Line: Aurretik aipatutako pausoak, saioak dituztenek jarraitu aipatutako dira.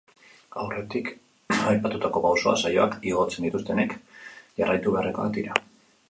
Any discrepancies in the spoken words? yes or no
yes